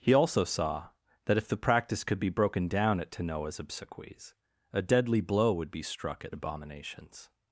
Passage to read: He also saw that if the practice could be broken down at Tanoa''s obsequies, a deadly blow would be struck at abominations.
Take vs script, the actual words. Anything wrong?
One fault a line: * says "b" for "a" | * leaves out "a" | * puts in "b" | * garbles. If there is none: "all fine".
all fine